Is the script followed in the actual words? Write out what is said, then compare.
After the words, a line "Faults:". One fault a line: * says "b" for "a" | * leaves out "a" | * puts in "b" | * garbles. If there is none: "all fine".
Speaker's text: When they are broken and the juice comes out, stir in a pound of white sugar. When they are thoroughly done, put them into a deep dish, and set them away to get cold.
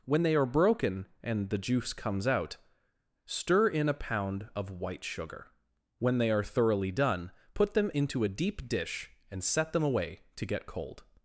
When they are broken and the juice comes out, stir in a pound of white sugar. When they are thoroughly done, put them into a deep dish, and set them away to get cold.
Faults:
all fine